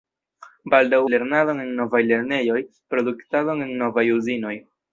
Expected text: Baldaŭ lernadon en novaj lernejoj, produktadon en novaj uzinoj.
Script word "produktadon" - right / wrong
right